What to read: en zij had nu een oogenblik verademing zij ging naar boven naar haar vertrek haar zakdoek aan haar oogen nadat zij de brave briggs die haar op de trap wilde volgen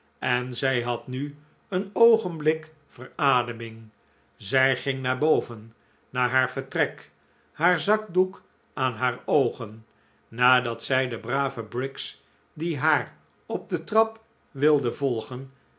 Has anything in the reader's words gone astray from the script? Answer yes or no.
no